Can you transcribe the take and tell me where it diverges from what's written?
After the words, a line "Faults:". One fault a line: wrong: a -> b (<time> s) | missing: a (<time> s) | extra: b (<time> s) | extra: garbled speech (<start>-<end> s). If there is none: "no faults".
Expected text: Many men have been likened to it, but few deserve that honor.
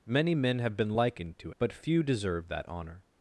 Many men have been likened to but few deserve that honor.
Faults:
missing: it (1.5 s)